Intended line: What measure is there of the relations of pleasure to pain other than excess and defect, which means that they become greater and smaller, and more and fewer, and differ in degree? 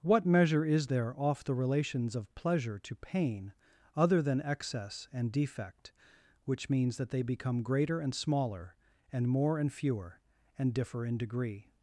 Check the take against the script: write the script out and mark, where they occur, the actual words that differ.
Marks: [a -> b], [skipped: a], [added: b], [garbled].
What measure is there [of -> off] the relations of pleasure to pain other than excess and defect, which means that they become greater and smaller, and more and fewer, and differ in degree?